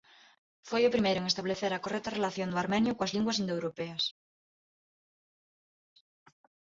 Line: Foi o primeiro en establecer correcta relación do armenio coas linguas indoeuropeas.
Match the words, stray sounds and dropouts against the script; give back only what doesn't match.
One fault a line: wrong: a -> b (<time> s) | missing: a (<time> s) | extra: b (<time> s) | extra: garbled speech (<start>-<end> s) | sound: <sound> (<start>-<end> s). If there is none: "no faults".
extra: a (1.7 s)